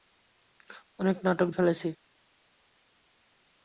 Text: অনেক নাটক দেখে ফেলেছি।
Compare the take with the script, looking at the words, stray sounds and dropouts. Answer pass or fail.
fail